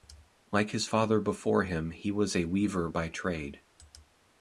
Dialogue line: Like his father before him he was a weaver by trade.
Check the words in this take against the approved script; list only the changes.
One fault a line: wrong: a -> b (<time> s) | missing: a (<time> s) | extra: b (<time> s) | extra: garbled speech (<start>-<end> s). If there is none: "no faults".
no faults